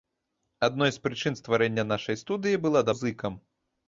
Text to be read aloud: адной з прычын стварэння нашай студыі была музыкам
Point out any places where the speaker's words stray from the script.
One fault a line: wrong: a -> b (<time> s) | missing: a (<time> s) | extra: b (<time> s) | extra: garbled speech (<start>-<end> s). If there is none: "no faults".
no faults